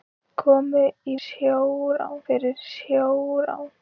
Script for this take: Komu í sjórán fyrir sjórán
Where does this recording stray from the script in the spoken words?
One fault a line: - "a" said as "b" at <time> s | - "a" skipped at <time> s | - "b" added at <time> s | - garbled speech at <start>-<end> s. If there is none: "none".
none